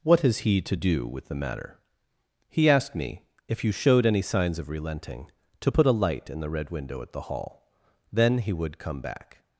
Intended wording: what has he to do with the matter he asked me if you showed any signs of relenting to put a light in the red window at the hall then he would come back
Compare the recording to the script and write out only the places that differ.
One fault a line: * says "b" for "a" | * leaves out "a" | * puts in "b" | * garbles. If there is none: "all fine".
all fine